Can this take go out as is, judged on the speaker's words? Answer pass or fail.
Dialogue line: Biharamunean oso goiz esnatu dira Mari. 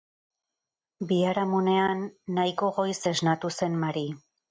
fail